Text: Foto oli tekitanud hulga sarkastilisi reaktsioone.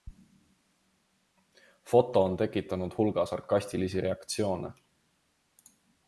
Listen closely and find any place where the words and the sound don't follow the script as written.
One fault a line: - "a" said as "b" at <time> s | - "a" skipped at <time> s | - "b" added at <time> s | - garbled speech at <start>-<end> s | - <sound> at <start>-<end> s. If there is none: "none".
- "oli" said as "on" at 2.2 s